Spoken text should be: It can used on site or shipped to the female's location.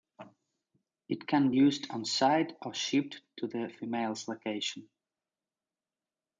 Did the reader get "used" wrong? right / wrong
right